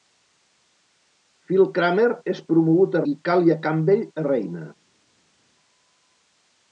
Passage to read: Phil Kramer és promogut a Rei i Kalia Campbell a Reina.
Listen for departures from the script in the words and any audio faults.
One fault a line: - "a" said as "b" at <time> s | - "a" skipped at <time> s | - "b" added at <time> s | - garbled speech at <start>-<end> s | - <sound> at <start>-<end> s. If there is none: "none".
- "Rei" skipped at 3.0 s